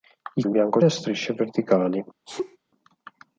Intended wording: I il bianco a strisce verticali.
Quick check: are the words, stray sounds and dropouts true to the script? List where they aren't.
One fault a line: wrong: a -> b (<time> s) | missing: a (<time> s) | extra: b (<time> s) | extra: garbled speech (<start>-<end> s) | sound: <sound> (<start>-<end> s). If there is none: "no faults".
sound: sneeze (2.3-2.6 s)